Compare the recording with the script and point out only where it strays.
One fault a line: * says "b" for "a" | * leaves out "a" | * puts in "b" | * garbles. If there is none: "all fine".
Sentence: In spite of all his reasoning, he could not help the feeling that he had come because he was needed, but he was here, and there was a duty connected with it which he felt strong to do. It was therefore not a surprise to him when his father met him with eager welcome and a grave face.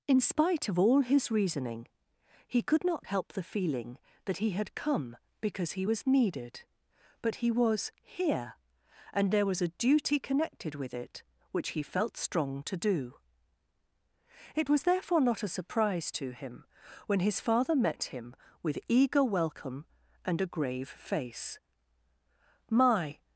* puts in "My"